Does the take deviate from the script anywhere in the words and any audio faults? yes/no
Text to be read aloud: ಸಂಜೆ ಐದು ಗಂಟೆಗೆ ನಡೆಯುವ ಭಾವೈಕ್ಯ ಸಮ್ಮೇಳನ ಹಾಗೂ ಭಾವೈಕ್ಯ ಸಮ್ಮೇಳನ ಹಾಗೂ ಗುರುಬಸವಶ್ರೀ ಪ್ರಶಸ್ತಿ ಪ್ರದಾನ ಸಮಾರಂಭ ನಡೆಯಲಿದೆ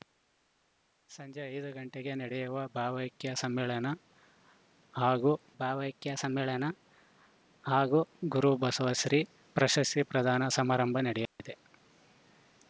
yes